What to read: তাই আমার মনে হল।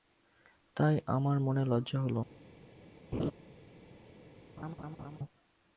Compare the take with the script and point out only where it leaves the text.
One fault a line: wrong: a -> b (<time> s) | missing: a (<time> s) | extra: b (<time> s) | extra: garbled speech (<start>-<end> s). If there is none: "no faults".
extra: লজ্জা (1.6 s)